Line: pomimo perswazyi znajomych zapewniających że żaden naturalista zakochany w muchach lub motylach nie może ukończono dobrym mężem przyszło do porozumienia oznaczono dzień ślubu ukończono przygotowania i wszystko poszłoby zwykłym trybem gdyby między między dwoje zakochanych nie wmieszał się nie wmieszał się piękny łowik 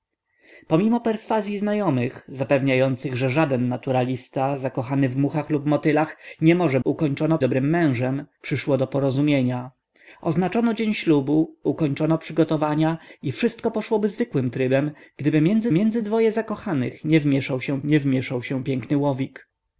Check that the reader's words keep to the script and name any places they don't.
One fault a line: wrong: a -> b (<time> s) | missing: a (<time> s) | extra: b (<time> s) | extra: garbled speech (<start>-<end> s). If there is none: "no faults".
no faults